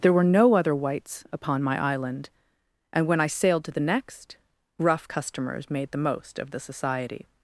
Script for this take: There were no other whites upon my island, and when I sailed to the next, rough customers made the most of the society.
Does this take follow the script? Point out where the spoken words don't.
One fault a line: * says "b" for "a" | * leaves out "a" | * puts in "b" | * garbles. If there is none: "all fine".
all fine